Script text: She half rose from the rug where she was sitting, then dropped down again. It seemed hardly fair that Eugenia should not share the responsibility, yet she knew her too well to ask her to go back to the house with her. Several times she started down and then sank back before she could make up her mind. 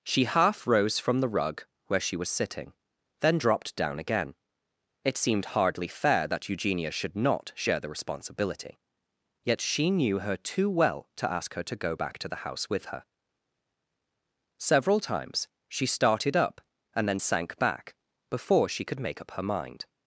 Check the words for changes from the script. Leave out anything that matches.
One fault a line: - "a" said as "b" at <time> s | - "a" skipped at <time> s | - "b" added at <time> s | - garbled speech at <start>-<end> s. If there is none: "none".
- "down" said as "up" at 16.4 s